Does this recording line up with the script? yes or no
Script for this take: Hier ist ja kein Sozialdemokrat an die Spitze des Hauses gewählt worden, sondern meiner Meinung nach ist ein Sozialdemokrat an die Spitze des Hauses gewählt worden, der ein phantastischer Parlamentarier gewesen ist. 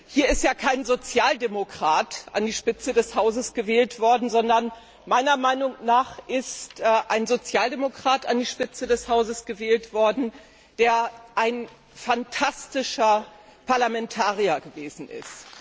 yes